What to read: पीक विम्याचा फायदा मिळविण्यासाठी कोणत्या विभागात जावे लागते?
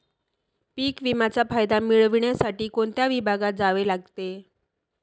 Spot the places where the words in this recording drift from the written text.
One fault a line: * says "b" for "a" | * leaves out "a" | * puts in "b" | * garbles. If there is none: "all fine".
all fine